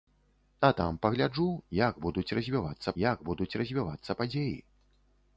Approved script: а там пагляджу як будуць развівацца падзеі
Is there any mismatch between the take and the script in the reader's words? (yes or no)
yes